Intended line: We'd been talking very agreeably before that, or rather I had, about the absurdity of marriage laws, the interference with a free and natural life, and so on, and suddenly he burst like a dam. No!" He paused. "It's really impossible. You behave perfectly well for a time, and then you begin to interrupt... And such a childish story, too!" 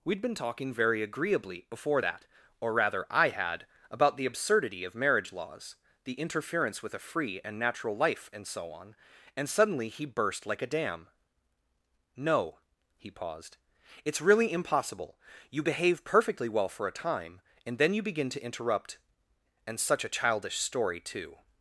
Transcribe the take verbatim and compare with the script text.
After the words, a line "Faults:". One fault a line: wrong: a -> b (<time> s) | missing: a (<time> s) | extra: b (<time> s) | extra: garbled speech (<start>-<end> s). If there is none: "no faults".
We'd been talking very agreeably before that, or rather I had, about the absurdity of marriage laws, the interference with a free and natural life, and so on, and suddenly he burst like a dam. No!" He paused. "It's really impossible. You behave perfectly well for a time, and then you begin to interrupt... And such a childish story, too!"
Faults:
no faults